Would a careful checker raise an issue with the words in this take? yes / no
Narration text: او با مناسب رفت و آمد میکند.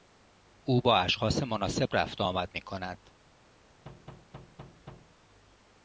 yes